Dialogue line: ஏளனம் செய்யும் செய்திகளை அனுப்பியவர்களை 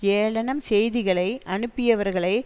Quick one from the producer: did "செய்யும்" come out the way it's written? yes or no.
no